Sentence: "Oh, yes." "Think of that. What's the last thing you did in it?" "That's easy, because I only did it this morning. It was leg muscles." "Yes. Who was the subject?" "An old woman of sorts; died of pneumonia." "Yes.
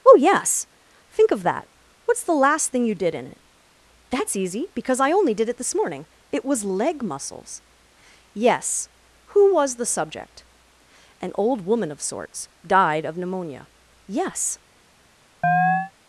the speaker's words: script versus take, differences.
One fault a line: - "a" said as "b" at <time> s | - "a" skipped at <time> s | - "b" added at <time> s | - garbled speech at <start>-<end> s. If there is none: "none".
none